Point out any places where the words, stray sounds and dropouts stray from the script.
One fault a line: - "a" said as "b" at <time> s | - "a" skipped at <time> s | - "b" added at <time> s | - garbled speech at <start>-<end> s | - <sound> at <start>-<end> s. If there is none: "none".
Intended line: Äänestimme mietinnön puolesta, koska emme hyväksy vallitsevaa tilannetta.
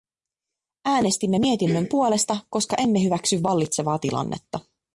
none